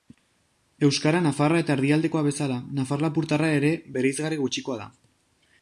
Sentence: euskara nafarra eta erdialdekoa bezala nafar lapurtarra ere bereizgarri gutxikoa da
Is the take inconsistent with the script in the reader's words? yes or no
no